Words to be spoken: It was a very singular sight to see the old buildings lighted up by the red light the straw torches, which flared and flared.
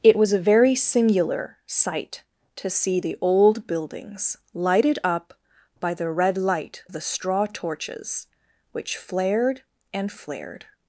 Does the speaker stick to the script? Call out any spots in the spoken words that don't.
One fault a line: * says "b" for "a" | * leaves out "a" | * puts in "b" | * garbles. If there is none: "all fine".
all fine